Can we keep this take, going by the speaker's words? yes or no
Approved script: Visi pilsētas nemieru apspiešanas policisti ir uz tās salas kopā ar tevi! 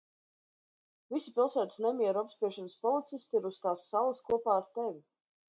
yes